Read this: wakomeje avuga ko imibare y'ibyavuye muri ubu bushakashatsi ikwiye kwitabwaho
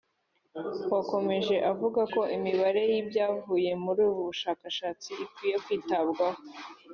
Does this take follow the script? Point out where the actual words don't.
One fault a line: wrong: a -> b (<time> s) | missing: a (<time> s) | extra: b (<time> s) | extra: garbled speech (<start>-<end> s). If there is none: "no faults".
no faults